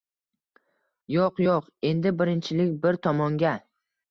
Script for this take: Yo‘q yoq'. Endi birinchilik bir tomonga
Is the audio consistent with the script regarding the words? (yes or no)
yes